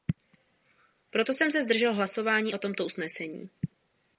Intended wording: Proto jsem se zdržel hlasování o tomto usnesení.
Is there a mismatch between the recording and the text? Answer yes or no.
no